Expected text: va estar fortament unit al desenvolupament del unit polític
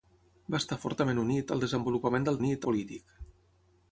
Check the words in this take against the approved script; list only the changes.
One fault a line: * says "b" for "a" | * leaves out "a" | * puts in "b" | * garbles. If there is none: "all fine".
all fine